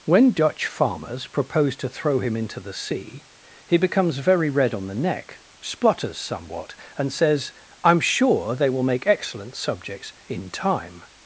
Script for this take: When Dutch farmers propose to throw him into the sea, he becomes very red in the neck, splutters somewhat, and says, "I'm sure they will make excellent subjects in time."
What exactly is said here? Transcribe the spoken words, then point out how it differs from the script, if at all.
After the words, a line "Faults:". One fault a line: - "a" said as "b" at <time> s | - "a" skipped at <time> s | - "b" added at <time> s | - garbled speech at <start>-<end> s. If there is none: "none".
When Dutch farmers propose to throw him into the sea, he becomes very red on the neck, splutters somewhat, and says, "I'm sure they will make excellent subjects in time."
Faults:
- "in" said as "on" at 4.7 s